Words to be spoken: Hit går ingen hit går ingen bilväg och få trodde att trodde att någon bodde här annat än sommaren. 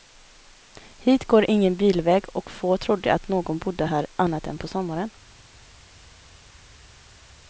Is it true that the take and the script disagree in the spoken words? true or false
true